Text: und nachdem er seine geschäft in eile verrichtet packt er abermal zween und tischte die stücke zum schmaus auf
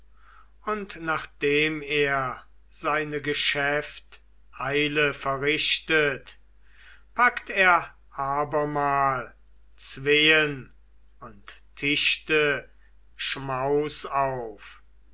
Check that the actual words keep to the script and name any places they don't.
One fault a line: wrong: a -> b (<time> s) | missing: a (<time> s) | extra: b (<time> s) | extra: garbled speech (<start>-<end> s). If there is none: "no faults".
missing: in (4.2 s)
missing: die stücke zum (12.7 s)